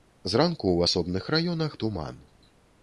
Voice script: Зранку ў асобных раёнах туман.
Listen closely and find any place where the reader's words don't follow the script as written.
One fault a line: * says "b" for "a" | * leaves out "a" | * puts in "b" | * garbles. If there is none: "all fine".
all fine